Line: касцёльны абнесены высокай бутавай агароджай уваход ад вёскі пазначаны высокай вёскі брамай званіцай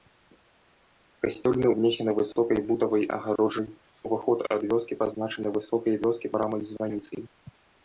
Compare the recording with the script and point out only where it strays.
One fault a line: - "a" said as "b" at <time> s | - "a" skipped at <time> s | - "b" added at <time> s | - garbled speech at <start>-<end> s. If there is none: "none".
none